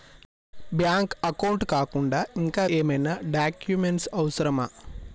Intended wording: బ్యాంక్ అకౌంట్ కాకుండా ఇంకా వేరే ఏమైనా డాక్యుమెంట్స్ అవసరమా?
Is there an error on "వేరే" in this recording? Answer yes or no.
yes